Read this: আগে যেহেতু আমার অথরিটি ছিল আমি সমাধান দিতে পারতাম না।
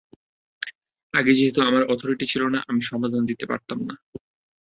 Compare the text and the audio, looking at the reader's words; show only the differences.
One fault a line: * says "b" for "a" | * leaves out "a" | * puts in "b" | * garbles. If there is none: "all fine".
* puts in "না"